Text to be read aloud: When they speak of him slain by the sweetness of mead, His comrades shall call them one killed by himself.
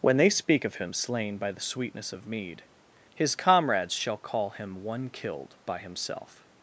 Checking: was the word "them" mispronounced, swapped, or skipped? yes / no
yes